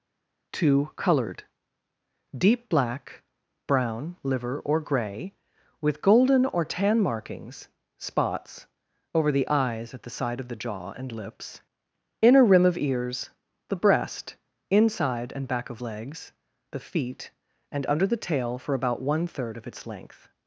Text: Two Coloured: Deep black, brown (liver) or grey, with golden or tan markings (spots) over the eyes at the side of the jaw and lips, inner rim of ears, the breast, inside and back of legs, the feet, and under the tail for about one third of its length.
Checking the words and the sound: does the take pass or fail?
pass